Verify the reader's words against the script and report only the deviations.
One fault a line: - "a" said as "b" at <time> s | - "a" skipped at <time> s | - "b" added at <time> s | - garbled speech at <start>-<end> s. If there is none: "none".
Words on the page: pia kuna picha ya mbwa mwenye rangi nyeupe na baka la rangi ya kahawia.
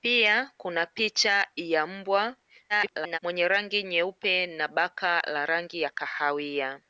- garbled speech at 2.7-3.2 s